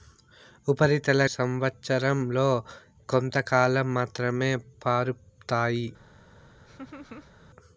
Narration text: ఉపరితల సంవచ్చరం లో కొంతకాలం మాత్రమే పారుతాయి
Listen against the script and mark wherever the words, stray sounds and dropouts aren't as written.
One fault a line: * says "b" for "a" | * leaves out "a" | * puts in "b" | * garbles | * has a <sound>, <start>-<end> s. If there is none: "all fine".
* has a laugh, 6.7-7.3 s